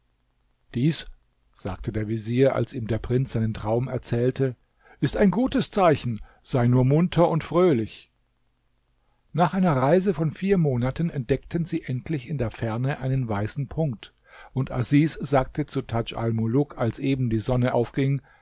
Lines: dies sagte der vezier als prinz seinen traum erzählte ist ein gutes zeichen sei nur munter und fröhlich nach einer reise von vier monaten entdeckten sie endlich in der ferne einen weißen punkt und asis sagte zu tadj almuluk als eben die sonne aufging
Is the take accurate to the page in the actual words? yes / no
no